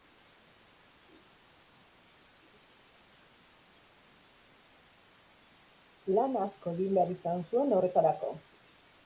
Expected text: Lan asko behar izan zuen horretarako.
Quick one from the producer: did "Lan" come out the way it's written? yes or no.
yes